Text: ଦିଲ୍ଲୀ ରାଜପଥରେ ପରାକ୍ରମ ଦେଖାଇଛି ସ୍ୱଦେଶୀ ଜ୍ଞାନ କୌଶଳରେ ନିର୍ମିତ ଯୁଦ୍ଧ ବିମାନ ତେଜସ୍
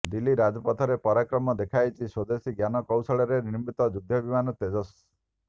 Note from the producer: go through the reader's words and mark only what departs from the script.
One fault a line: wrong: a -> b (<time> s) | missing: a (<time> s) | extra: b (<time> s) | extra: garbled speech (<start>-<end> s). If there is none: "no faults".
no faults